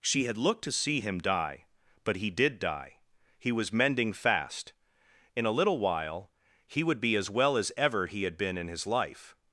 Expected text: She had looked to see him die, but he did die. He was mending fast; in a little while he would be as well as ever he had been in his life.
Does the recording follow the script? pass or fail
pass